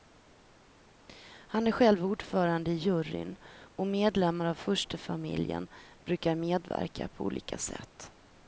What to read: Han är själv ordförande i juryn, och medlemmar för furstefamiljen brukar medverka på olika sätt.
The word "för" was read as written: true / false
false